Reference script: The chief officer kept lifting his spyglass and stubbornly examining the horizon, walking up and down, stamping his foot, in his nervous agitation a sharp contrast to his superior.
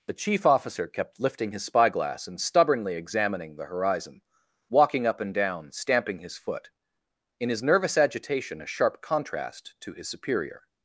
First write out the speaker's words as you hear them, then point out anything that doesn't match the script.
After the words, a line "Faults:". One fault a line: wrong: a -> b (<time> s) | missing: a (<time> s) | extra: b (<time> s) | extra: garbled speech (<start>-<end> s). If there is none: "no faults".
The chief officer kept lifting his spyglass and stubbornly examining the horizon, walking up and down, stamping his foot, in his nervous agitation a sharp contrast to his superior.
Faults:
no faults